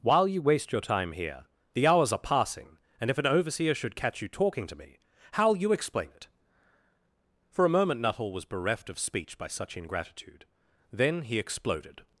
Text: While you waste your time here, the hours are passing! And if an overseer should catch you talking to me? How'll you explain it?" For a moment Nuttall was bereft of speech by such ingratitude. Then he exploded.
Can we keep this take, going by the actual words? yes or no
yes